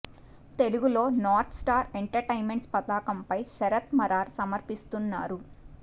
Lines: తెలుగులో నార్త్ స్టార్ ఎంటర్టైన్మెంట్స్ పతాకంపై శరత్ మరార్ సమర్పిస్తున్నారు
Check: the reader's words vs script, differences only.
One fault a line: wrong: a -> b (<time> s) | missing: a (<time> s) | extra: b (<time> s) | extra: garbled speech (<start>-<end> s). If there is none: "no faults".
no faults